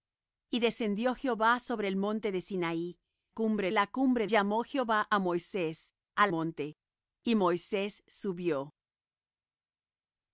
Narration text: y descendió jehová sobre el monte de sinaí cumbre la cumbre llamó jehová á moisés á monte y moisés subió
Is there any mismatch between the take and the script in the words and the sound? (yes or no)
no